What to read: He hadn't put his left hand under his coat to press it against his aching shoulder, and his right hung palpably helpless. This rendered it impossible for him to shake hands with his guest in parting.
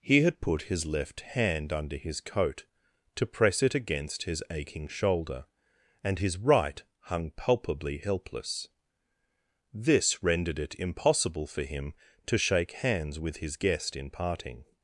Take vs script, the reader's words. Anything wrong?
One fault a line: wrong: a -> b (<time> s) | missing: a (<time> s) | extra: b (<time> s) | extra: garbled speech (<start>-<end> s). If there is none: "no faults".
wrong: hadn't -> had (0.2 s)